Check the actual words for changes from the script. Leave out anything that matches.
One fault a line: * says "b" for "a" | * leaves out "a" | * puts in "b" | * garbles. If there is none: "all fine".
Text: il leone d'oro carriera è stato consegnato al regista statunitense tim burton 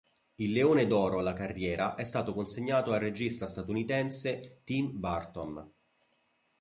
* puts in "alla"